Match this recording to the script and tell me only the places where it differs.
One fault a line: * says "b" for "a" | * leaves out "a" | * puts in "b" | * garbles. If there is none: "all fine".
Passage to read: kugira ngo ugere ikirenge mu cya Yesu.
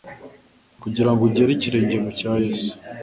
all fine